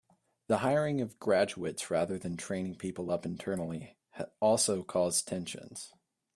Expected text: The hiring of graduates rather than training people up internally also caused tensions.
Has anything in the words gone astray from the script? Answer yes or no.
no